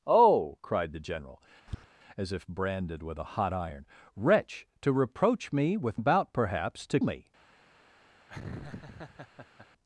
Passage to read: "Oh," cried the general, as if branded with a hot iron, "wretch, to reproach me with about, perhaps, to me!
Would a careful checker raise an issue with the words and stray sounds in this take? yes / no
yes